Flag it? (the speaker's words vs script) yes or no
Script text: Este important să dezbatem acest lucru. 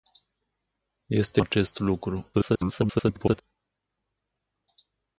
yes